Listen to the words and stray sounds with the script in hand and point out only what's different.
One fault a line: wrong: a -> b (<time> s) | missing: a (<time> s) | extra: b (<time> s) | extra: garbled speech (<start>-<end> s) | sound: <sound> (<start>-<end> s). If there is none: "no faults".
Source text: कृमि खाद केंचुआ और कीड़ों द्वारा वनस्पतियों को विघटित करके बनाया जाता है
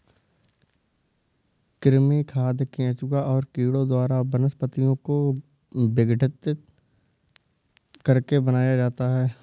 no faults